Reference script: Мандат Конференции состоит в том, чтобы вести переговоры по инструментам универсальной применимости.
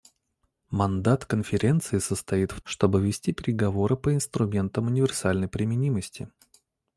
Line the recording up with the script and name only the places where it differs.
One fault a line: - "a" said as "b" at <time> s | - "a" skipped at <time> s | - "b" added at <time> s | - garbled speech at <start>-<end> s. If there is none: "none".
- "том" skipped at 2.6 s